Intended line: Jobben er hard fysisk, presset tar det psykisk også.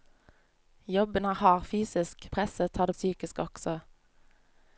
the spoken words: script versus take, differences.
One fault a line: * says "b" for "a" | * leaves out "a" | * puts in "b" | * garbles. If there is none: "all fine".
all fine